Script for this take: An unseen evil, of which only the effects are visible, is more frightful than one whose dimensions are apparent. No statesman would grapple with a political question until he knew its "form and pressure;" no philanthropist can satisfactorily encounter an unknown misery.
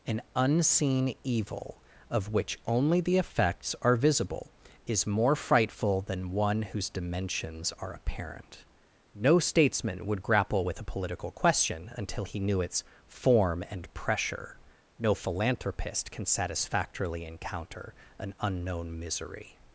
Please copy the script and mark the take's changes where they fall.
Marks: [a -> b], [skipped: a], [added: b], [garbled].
An unseen evil, of which only the effects are visible, is more frightful than one whose dimensions are apparent. No statesman would grapple with a political question until he knew its "form and pressure;" no philanthropist can satisfactorily encounter an unknown misery.